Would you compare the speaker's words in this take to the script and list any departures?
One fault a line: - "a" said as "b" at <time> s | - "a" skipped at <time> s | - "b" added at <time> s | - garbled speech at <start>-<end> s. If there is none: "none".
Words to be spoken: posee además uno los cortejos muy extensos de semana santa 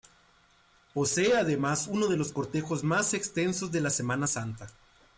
- "de" added at 2.1 s
- "muy" said as "más" at 2.8 s
- "la" added at 3.8 s